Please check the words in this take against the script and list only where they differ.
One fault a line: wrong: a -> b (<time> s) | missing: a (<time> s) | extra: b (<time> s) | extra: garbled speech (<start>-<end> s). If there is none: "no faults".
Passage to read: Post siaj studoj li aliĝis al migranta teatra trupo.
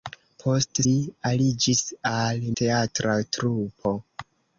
missing: siaj studoj (0.8 s)
missing: migranta (2.4 s)